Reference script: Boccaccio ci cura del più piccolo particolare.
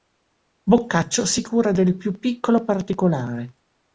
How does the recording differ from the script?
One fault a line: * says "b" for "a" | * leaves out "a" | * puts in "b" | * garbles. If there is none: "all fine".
* says "si" for "ci"